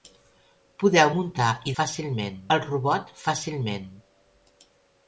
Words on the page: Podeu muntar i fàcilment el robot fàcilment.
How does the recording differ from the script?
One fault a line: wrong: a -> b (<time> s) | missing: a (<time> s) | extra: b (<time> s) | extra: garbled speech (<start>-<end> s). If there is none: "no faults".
no faults